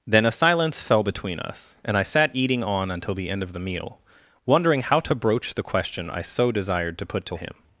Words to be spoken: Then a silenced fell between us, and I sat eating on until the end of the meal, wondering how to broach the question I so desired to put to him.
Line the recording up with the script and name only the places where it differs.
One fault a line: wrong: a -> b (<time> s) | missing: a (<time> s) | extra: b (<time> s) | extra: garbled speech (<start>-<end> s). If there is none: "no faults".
wrong: silenced -> silence (0.3 s)